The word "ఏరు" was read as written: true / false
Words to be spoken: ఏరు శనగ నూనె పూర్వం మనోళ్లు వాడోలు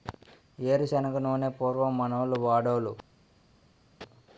true